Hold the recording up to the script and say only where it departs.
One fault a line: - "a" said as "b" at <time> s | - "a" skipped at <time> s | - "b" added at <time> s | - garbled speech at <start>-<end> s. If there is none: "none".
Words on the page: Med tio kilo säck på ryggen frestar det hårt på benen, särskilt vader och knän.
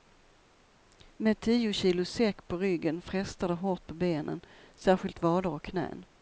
none